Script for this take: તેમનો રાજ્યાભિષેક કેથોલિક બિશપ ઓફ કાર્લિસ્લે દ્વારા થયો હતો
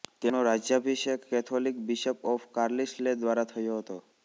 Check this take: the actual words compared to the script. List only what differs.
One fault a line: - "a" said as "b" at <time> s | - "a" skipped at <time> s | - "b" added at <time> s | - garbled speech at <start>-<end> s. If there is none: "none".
none